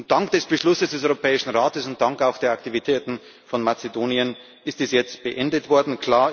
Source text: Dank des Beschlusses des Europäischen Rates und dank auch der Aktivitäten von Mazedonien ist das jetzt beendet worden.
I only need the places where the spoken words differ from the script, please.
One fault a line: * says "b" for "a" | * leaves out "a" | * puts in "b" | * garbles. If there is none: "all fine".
all fine